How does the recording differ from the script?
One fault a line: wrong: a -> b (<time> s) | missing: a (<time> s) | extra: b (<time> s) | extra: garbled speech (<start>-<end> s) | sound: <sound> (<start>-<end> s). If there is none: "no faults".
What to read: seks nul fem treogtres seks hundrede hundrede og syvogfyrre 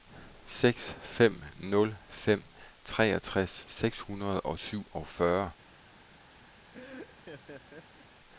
extra: fem (1.0 s)
missing: hundrede (4.4 s)
sound: laugh (6.7-8.1 s)